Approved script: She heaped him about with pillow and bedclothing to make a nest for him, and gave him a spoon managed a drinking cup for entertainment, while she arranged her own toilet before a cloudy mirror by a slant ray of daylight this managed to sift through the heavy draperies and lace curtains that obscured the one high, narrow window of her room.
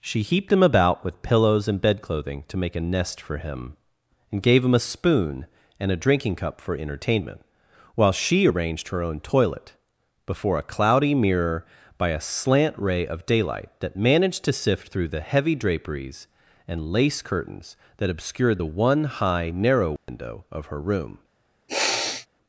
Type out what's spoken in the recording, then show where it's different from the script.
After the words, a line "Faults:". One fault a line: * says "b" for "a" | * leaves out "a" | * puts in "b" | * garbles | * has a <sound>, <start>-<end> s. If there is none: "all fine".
She heaped him about with pillows and bedclothing to make a nest for him, and gave him a spoon and a drinking cup for entertainment, while she arranged her own toilet before a cloudy mirror by a slant ray of daylight that managed to sift through the heavy draperies and lace curtains that obscured the one high, narrow window of her room.
Faults:
* says "pillows" for "pillow"
* says "and" for "managed"
* says "that" for "this"
* has a dropout, 20.0-20.1 s
* has a sniff, 21.7-22.3 s